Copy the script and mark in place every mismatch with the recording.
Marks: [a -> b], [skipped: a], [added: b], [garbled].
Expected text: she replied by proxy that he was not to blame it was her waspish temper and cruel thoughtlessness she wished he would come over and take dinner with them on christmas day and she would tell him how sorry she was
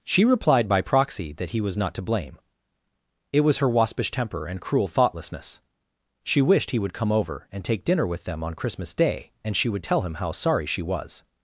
she replied by proxy that he was not to blame it was her waspish temper and cruel thoughtlessness she wished he would come over and take dinner with them on christmas day and she would tell him how sorry she was